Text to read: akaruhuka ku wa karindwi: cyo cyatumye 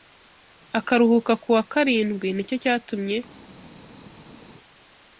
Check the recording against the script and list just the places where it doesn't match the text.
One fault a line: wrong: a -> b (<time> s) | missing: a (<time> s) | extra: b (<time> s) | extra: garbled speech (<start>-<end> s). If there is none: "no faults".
extra: ni (2.3 s)